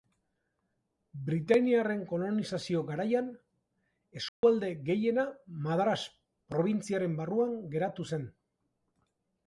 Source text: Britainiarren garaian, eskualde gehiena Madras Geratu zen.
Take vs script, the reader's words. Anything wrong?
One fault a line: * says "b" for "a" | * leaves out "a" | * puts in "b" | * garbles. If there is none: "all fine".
* puts in "kolonizazio"
* puts in "Probintziaren barruan"